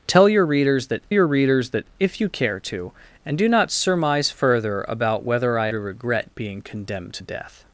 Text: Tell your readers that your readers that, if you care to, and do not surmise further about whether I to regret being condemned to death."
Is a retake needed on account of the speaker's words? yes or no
no